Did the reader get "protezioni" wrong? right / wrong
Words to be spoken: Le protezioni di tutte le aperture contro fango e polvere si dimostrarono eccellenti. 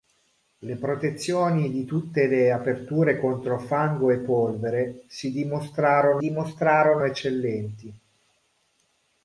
right